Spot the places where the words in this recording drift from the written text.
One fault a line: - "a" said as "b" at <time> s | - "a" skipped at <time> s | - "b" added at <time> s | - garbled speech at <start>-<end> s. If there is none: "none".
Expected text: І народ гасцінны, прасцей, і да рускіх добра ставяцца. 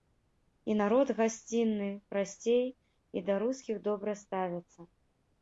none